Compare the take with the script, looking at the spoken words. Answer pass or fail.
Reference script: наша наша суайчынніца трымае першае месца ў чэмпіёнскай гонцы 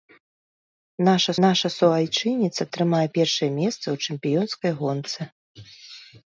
pass